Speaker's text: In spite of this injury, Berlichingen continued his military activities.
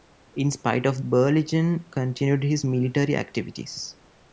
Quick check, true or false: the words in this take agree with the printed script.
false